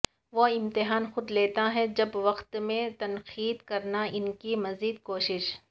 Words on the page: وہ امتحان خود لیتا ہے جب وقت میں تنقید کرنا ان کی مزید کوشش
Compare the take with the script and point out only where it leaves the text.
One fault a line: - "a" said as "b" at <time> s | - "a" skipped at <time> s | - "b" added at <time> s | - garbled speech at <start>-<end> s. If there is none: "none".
none